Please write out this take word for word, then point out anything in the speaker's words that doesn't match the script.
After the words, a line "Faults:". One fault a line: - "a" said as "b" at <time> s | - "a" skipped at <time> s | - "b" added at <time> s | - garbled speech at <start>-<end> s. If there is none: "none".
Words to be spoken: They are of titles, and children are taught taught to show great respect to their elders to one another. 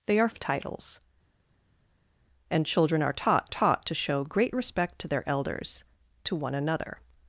They are of titles, and children are taught taught to show great respect to their elders to one another.
Faults:
none